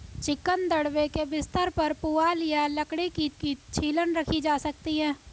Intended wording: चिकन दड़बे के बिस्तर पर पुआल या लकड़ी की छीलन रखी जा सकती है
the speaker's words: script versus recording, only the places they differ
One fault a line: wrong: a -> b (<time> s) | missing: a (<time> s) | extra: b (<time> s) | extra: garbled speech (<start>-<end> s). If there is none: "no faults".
extra: की (3.3 s)